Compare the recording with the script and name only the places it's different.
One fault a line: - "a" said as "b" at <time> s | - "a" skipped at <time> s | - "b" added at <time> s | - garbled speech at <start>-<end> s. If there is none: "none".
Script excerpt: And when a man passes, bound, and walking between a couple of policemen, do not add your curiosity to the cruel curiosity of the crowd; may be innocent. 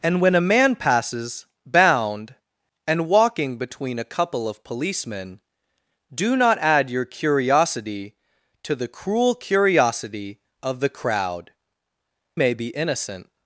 none